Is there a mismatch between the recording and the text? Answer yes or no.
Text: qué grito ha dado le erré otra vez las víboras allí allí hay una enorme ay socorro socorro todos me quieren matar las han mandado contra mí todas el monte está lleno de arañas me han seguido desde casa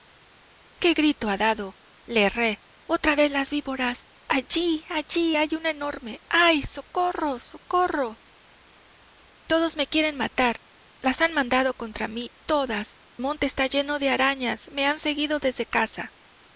yes